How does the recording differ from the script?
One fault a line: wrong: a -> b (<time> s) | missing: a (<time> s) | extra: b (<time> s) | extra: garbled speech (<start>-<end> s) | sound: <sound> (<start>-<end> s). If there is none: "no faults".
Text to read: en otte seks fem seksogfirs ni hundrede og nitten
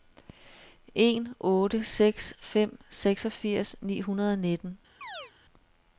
sound: chirp (5.0-5.3 s)